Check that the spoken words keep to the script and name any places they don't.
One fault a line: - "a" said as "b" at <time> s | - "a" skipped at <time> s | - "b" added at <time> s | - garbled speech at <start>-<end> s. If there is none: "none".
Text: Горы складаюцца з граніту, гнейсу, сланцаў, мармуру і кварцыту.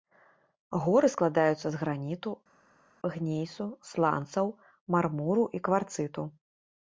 none